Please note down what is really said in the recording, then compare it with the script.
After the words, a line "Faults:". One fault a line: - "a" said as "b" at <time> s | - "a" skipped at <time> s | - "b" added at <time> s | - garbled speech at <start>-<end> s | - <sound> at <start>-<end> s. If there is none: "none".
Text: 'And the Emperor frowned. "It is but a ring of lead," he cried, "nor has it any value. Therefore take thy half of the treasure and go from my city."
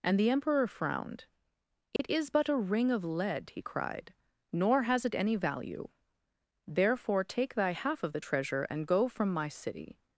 'And the Emperor frowned. "It is but a ring of lead," he cried, "nor has it any value. Therefore take thy half of the treasure and go from my city."
Faults:
- dropout at 2.0-2.0 s